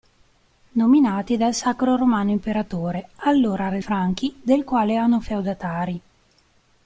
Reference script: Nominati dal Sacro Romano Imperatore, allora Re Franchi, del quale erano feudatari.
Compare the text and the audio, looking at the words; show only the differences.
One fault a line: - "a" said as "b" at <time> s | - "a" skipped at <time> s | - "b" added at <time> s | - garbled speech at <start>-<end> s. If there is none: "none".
none